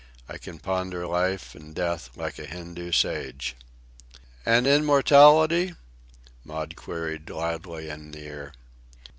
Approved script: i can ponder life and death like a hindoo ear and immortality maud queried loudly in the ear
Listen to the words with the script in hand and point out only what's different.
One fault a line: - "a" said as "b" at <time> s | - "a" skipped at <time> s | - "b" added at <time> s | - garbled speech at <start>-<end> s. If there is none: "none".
- "ear" said as "sage" at 2.9 s